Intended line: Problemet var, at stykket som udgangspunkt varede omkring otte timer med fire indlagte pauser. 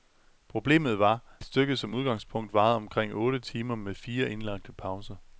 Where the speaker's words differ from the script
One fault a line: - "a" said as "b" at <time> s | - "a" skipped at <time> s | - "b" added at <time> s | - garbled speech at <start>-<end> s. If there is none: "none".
- "at" skipped at 1.4 s